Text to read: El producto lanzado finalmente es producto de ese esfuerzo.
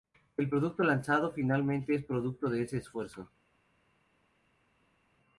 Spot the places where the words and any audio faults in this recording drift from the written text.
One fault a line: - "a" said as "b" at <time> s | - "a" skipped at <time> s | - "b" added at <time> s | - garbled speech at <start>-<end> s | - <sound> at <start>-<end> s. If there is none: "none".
none